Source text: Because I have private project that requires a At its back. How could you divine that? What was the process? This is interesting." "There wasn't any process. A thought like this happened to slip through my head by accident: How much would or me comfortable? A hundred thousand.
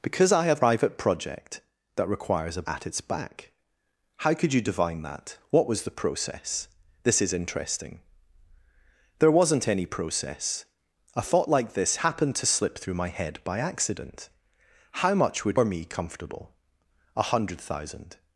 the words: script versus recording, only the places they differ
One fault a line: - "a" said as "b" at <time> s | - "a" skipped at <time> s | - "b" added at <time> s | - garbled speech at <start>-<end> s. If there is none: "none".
none